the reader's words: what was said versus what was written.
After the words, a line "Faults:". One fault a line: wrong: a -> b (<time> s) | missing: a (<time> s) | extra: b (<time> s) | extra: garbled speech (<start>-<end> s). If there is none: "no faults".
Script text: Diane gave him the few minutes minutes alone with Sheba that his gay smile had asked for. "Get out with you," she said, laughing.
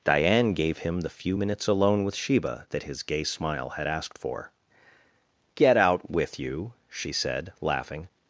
Diane gave him the few minutes alone with Sheba that his gay smile had asked for. "Get out with you," she said, laughing.
Faults:
missing: minutes (1.7 s)